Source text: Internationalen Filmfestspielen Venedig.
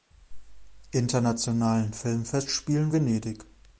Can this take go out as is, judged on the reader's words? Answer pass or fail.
pass